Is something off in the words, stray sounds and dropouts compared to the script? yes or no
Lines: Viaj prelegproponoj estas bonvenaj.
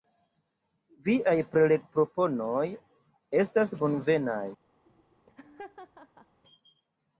yes